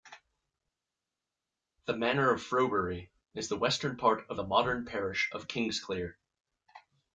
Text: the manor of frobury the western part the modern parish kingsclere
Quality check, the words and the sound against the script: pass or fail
fail